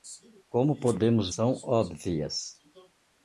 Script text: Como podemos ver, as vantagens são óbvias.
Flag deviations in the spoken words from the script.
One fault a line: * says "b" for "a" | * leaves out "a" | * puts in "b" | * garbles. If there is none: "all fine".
* leaves out "ver as vantagens"